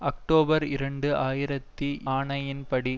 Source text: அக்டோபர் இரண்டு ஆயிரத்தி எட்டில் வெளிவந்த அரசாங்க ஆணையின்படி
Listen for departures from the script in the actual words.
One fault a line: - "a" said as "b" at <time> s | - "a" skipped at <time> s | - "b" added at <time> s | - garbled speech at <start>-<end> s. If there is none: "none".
- "எட்டில் வெளிவந்த அரசாங்க" skipped at 1.9 s